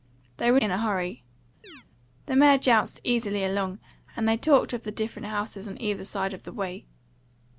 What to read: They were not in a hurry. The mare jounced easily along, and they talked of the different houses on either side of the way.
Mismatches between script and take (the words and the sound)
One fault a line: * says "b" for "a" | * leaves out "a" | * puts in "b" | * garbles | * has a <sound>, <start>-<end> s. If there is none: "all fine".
* leaves out "not"
* has a chirp, 1.6-1.8 s